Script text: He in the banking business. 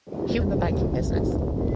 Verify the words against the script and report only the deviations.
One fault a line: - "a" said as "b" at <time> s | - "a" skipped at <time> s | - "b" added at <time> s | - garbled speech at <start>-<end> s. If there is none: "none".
none